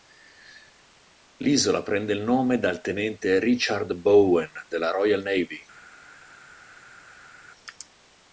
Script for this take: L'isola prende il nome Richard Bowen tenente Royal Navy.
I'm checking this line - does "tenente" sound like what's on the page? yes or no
no